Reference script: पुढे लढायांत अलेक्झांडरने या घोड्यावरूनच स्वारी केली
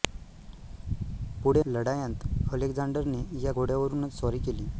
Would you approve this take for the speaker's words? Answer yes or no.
yes